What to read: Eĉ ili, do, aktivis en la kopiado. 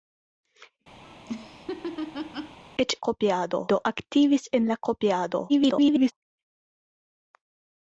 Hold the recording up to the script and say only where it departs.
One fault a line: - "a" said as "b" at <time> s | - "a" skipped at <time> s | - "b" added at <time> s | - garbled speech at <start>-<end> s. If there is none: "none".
- "ili" said as "kopiado" at 3.1 s
- garbled speech at 5.5-6.1 s